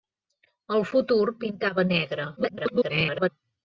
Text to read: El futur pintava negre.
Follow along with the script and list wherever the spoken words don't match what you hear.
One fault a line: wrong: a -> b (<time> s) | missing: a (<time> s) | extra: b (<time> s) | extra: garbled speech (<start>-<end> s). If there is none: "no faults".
extra: garbled speech (2.4-3.3 s)